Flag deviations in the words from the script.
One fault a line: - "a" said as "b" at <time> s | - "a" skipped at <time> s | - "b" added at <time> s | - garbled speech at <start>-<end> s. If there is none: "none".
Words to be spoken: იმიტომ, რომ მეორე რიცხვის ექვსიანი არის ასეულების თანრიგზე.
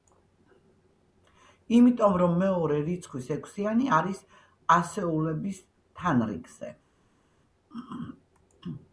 none